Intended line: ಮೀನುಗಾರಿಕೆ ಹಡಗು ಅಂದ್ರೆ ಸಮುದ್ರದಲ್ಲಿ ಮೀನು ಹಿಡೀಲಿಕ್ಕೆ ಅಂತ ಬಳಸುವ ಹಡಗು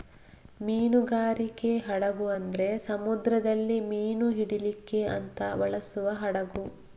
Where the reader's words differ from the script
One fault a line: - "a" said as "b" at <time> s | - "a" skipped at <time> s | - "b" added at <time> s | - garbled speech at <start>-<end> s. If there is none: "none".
none